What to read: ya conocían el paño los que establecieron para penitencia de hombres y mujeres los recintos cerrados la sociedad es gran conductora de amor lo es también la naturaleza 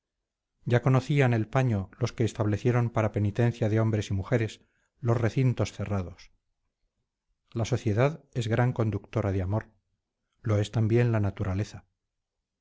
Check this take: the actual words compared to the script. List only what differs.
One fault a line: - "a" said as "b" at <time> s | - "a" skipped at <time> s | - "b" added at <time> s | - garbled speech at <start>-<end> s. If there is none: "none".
none